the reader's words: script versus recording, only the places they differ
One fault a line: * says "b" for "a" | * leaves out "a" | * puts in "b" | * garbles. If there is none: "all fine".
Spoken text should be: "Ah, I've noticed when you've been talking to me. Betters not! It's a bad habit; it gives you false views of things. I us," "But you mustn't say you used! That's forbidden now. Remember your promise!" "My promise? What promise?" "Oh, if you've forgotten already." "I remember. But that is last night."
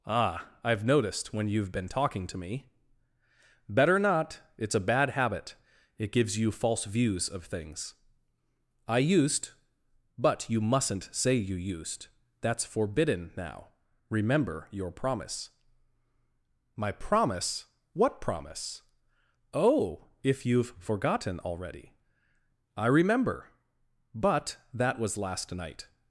* says "Better" for "Betters"
* says "used" for "us"
* says "was" for "is"